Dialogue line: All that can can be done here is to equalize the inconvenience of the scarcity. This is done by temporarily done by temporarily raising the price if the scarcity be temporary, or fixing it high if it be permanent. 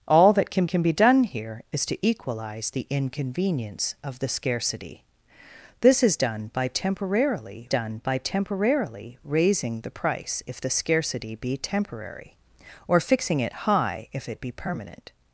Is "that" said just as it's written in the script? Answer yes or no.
yes